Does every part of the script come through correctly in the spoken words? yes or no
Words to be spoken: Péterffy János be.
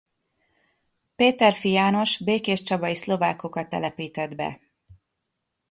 no